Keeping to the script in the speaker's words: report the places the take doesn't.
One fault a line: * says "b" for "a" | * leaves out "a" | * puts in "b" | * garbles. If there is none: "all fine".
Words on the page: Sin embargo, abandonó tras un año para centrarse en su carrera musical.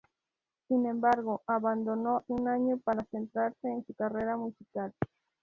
* leaves out "tras"